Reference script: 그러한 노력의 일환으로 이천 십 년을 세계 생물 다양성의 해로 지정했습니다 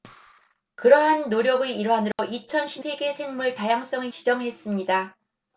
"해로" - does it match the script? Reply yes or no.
no